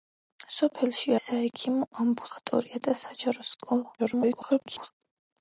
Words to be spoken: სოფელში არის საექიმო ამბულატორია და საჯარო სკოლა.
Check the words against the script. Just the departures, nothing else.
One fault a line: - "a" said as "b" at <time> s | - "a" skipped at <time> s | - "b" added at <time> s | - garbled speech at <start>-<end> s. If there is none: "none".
- "არის" skipped at 1.1 s
- garbled speech at 4.0-4.9 s